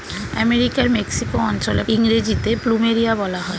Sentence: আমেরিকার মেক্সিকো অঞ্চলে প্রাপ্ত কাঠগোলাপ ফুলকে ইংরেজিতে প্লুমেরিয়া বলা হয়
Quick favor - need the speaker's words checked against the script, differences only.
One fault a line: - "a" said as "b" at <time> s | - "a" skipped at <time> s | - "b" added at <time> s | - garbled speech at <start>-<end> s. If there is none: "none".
- "প্রাপ্ত কাঠগোলাপ ফুলকে" skipped at 1.8 s